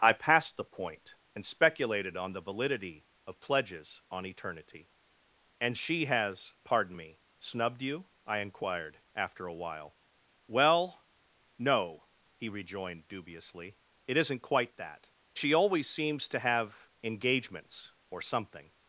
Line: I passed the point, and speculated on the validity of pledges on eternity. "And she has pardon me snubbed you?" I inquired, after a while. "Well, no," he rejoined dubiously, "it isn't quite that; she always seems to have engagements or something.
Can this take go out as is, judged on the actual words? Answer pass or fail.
pass